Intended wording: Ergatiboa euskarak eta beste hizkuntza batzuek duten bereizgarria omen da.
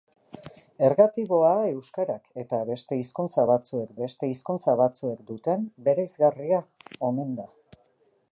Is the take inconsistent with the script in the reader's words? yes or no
yes